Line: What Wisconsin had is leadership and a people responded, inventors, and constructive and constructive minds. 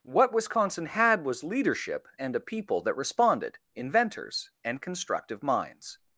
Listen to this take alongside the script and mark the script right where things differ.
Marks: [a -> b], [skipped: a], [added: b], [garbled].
What Wisconsin had [is -> was] leadership and a people [added: that] responded, inventors, and constructive [skipped: and constructive] minds.